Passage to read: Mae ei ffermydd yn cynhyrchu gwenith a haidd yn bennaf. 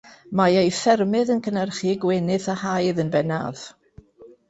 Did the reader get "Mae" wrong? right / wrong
right